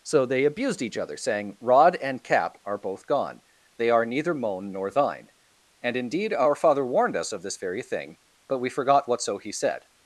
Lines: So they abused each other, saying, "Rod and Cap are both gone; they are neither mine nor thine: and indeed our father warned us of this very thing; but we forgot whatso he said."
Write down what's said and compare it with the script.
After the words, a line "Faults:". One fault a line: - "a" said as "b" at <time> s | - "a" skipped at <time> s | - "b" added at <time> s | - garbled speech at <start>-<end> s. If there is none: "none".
So they abused each other, saying, "Rod and Cap are both gone; they are neither moan nor thine: and indeed our father warned us of this very thing; but we forgot whatso he said."
Faults:
- "mine" said as "moan" at 4.3 s